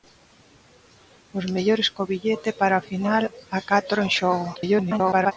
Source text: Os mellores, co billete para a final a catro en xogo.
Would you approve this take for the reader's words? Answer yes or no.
no